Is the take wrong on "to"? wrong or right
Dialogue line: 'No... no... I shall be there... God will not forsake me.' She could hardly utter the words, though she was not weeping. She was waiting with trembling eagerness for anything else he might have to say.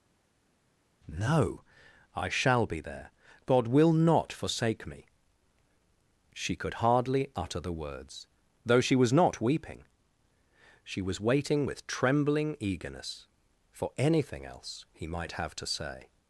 right